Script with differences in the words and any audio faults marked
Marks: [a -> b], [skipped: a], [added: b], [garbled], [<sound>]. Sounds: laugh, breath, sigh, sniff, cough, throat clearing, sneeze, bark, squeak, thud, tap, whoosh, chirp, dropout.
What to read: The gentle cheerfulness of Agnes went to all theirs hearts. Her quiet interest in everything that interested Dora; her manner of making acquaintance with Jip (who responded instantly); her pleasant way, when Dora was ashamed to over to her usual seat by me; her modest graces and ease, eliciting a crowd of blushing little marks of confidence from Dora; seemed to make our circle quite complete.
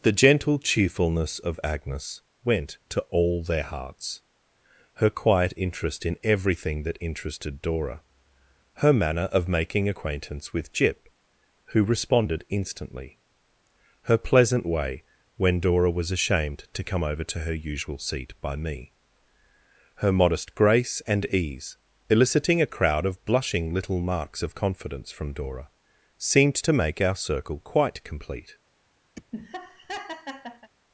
The gentle cheerfulness of Agnes went to all [theirs -> their] hearts. Her quiet interest in everything that interested Dora; her manner of making acquaintance with Jip (who responded instantly); her pleasant way, when Dora was ashamed to [added: come] over to her usual seat by me; her modest [graces -> grace] and ease, eliciting a crowd of blushing little marks of confidence from Dora; seemed to make our circle quite complete. [laugh]